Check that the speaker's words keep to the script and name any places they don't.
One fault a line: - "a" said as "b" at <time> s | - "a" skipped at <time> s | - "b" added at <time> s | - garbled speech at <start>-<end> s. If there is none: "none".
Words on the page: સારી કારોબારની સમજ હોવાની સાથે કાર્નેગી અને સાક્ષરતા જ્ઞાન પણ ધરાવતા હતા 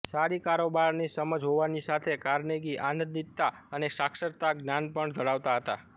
- "આનંદિતતા" added at 2.9 s